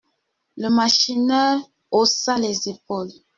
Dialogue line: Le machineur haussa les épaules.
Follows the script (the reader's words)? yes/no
yes